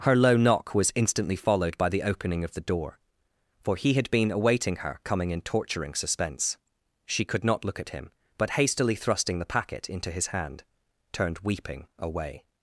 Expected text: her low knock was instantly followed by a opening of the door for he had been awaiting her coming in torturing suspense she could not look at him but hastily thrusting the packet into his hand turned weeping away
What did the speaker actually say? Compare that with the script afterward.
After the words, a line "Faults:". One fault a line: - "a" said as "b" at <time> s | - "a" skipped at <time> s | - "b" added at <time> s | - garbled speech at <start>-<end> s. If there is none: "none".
her low knock was instantly followed by the opening of the door for he had been awaiting her coming in torturing suspense she could not look at him but hastily thrusting the packet into his hand turned weeping away
Faults:
- "a" said as "the" at 1.9 s